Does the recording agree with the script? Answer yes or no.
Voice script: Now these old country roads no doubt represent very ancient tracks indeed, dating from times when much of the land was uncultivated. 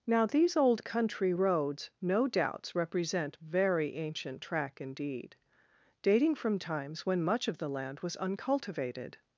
no